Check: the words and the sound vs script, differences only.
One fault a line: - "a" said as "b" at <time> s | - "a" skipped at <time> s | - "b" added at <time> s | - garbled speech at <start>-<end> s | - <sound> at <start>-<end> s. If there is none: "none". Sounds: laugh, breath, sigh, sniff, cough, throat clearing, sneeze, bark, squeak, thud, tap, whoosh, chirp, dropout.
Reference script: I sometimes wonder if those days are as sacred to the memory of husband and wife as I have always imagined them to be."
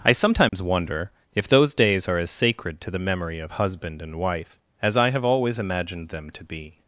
- dropout at 0.5-0.5 s